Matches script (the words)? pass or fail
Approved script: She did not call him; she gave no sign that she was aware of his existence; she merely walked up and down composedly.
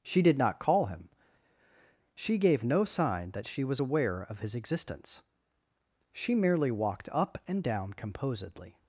pass